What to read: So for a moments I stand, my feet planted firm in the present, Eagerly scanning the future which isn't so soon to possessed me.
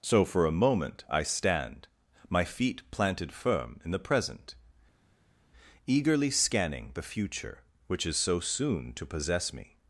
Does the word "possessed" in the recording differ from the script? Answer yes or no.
yes